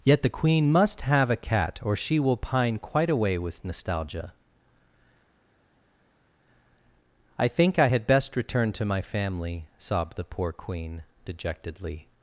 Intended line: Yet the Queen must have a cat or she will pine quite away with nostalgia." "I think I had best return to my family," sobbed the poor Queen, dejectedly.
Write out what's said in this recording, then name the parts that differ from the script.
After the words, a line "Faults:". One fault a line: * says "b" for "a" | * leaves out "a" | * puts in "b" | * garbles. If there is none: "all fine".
Yet the Queen must have a cat or she will pine quite away with nostalgia." "I think I had best return to my family," sobbed the poor Queen, dejectedly.
Faults:
all fine